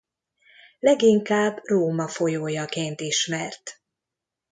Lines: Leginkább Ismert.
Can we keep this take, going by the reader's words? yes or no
no